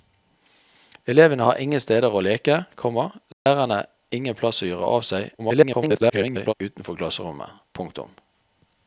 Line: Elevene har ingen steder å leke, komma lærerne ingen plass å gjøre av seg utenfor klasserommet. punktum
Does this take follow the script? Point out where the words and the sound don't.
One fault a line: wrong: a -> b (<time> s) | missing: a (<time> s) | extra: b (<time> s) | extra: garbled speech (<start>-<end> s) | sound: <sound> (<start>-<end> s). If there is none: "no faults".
sound: dropout (3.3-3.5 s)
extra: garbled speech (5.4-6.5 s)